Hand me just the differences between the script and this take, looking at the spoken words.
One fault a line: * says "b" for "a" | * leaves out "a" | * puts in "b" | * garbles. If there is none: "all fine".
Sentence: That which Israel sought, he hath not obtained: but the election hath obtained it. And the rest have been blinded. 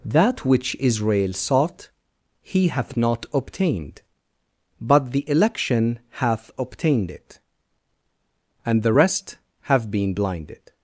all fine